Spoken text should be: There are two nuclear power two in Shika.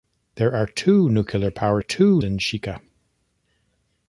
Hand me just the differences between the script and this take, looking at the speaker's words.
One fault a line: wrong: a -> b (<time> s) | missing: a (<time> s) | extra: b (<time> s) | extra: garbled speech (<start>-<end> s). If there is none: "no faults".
no faults